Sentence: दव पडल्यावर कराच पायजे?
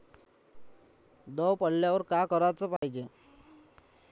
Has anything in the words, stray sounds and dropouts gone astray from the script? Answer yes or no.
yes